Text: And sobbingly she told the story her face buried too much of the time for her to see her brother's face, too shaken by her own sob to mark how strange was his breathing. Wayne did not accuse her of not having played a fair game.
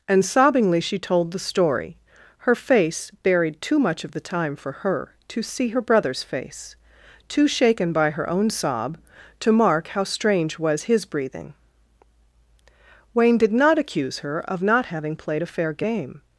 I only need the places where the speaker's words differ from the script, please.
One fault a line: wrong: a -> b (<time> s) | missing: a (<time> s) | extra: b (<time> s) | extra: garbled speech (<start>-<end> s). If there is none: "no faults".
no faults